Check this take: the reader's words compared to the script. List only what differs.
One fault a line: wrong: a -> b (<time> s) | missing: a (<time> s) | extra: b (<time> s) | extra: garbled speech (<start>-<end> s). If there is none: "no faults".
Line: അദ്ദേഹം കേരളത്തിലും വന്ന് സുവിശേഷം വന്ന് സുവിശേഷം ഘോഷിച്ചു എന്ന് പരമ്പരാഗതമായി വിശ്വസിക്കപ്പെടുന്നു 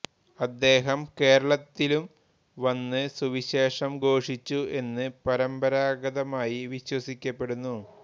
missing: വന്ന് സുവിശേഷം (3.9 s)